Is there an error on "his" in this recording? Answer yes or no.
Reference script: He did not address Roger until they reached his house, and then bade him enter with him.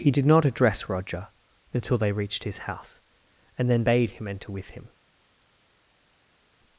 no